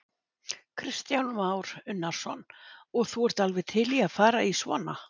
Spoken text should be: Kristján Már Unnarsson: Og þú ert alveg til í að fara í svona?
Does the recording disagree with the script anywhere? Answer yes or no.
no